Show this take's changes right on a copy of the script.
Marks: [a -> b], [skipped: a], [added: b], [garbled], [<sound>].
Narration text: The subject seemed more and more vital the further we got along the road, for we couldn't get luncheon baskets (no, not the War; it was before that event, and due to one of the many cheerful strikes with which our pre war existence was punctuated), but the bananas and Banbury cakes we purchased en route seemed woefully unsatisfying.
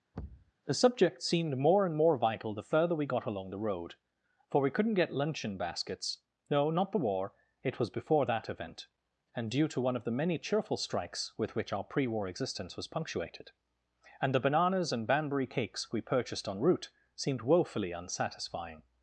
[thud] The subject seemed more and more vital the further we got along the road, for we couldn't get luncheon baskets (no, not the War; it was before that event, and due to one of the many cheerful strikes with which our pre war existence was punctuated), [but -> and] the bananas and Banbury cakes we purchased en route seemed woefully unsatisfying.